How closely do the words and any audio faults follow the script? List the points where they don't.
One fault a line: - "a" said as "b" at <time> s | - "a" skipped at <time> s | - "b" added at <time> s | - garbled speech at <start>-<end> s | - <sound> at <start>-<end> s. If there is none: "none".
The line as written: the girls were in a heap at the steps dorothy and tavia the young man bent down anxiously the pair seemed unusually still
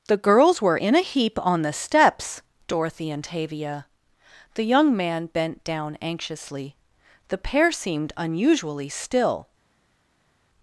- "at" said as "on" at 1.4 s